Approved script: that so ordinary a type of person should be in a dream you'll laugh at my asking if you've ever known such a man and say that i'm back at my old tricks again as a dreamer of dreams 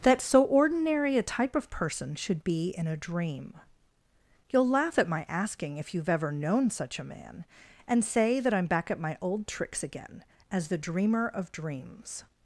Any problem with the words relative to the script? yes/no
yes